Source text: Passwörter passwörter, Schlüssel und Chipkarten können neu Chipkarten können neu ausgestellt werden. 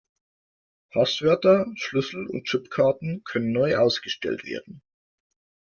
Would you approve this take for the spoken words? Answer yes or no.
no